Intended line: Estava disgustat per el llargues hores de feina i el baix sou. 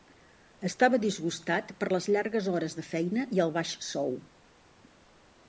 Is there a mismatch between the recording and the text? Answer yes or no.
yes